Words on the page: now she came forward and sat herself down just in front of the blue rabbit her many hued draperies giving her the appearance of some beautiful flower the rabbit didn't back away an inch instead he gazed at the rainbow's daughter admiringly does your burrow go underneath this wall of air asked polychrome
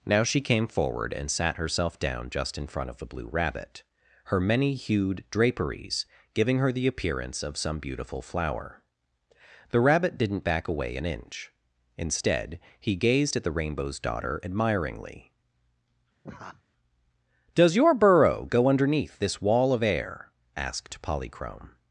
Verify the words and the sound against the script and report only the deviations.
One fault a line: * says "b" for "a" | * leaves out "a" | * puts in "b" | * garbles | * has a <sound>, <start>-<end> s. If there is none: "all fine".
* has a laugh, 16.2-16.6 s